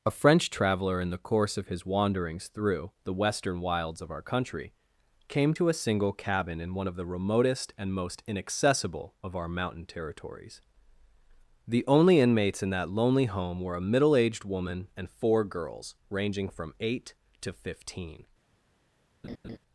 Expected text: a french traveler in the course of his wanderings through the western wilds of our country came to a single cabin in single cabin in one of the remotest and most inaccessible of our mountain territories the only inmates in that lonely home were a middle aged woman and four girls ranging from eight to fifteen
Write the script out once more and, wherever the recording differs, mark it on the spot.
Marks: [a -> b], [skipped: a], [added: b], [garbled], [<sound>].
a french traveler in the course of his wanderings through the western wilds of our country came to a single cabin in [skipped: single cabin in] one of the remotest and most inaccessible of our mountain territories the only inmates in that lonely home were a middle aged woman and four girls ranging from eight to fifteen [laugh]